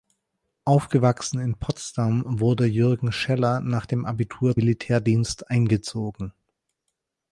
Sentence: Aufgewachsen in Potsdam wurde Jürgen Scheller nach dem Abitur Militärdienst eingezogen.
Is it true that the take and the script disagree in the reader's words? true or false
false